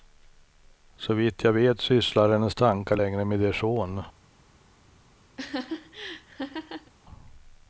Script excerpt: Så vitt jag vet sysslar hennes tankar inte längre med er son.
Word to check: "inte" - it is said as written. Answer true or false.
false